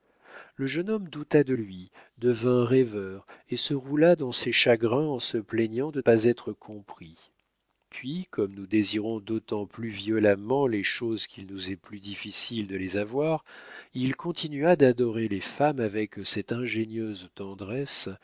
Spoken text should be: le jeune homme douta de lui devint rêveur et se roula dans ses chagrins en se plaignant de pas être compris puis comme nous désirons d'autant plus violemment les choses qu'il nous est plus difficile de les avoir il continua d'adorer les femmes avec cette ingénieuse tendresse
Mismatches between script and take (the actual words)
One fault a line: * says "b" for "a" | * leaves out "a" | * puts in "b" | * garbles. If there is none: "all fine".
all fine